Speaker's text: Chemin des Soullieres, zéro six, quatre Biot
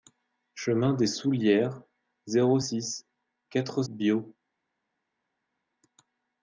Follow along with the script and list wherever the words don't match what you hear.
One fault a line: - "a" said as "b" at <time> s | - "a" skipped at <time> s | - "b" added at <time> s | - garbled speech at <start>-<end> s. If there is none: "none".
none